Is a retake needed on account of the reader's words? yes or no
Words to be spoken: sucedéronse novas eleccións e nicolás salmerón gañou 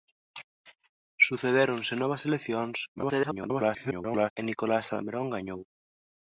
yes